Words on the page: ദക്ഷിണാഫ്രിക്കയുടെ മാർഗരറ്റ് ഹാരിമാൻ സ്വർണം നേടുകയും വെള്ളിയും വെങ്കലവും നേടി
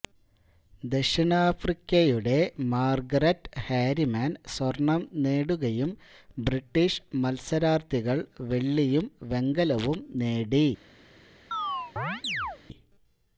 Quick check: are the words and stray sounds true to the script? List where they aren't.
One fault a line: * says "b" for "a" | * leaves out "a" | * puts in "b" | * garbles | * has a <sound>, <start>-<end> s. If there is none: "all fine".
* puts in "ബ്രിട്ടീഷ് മത്സരാർത്ഥികൾ"
* has a chirp, 11.5-12.6 s